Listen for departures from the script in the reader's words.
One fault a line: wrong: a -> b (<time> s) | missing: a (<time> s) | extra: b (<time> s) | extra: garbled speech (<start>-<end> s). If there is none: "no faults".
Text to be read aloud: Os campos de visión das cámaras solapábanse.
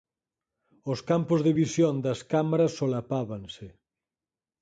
no faults